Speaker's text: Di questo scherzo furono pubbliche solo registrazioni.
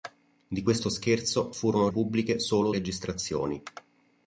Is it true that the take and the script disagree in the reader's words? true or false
false